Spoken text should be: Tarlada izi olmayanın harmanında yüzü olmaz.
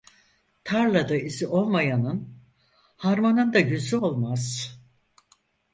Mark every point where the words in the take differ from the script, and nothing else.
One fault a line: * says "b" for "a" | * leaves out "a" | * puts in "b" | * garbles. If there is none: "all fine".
all fine